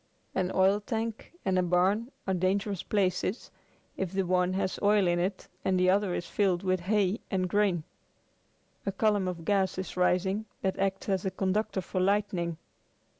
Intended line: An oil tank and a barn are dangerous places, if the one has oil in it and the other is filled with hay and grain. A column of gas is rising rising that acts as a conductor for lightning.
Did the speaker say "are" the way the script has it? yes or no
yes